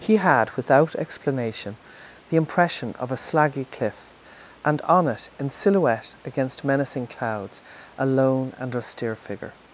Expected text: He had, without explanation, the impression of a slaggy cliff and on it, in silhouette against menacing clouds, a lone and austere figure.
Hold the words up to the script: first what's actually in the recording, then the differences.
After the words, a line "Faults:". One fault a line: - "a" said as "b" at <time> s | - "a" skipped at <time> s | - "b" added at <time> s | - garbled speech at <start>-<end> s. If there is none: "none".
He had, without explanation, the impression of a slaggy cliff and on it, in silhouette against menacing clouds, a lone and austere figure.
Faults:
none